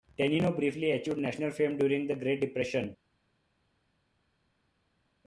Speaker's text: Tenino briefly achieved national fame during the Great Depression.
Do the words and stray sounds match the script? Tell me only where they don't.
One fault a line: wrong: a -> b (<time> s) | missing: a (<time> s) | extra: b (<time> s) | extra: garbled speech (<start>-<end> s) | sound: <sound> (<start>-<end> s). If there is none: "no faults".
no faults